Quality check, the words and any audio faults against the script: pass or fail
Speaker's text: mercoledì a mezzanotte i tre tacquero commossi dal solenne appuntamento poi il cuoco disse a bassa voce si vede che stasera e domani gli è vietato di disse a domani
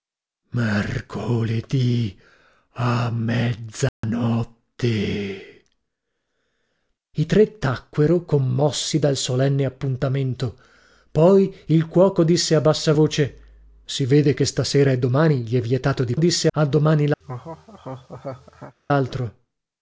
fail